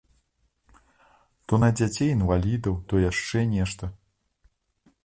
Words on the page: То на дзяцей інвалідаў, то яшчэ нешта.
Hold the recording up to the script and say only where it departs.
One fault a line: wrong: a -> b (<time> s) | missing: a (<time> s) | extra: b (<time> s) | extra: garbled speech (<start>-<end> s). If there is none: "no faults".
no faults